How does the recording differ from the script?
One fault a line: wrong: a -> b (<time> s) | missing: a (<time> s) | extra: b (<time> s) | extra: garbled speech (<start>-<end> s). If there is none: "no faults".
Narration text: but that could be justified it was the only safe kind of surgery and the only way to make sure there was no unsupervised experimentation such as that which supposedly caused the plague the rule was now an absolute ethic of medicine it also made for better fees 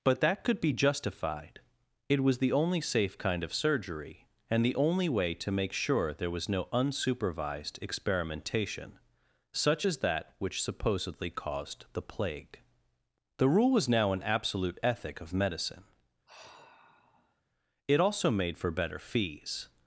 no faults